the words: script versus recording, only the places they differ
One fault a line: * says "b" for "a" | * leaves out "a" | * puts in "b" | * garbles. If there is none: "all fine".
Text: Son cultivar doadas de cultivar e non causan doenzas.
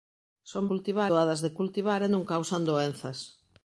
all fine